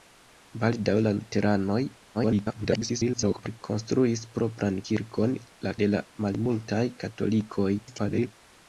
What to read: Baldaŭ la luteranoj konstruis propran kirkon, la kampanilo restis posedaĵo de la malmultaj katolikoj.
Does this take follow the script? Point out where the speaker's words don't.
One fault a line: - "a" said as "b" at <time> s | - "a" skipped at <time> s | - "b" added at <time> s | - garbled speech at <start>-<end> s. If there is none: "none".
- garbled speech at 2.1-3.6 s
- "kampanilo restis posedaĵo" skipped at 5.7 s
- garbled speech at 7.8-8.3 s